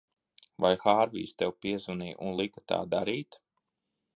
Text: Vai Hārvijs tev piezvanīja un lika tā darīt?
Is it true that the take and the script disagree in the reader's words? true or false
false